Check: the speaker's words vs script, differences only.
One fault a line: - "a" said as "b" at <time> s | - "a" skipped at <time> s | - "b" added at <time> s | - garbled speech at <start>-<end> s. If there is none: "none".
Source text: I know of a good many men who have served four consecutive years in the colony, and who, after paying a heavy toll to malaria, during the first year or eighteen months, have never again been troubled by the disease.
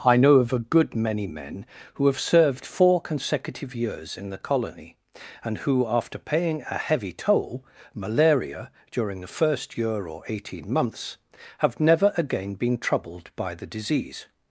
- "to" skipped at 7.6 s